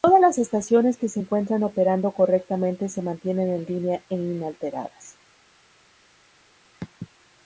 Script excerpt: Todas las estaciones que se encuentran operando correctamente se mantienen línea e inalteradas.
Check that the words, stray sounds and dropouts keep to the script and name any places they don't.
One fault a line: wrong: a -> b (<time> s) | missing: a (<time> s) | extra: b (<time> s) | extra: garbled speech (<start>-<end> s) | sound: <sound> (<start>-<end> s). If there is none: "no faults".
extra: en (3.5 s)